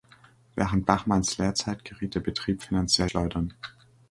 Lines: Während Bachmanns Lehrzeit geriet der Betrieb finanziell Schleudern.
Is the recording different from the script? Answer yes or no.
no